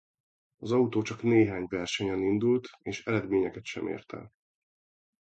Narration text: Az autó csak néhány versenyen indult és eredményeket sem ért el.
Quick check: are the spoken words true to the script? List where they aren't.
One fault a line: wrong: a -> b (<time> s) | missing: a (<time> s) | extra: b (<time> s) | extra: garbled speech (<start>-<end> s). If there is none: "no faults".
no faults